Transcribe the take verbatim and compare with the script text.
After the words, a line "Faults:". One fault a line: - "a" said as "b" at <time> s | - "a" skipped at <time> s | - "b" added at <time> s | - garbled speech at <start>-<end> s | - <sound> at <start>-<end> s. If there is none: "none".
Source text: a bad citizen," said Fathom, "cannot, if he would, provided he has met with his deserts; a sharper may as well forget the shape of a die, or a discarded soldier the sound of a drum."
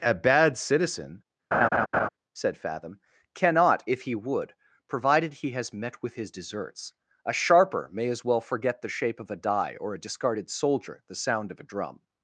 a bad citizen," said Fathom, "cannot, if he would, provided he has met with his deserts; a sharper may as well forget the shape of a die, or a discarded soldier the sound of a drum."
Faults:
- laugh at 1.5-2.1 s